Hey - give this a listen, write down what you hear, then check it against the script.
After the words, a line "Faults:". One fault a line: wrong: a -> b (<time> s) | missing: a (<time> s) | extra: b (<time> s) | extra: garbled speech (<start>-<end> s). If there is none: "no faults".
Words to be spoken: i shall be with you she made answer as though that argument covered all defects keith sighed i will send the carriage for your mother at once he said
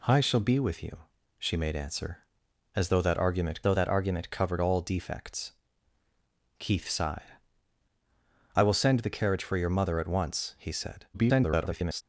i shall be with you she made answer as though that argument though that argument covered all defects keith sighed i will send the carriage for your mother at once he said [garbled]
Faults:
extra: though that argument (3.6 s)
extra: garbled speech (11.1-12.0 s)